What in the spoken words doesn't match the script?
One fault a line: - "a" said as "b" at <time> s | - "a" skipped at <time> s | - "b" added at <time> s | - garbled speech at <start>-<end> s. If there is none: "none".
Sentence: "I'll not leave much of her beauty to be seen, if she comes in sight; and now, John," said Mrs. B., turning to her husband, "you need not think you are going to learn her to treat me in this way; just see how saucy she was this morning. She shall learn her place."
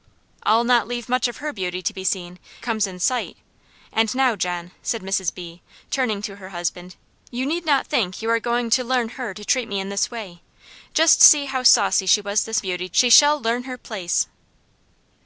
- "if she" skipped at 2.4 s
- "morning" said as "beauty" at 12.6 s